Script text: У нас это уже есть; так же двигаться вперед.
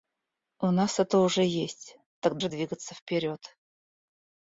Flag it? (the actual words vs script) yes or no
no